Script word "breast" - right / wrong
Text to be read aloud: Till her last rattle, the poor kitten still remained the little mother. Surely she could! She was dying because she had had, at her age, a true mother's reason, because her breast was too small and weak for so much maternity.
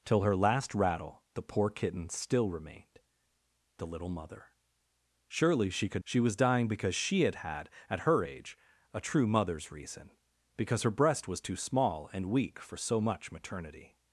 right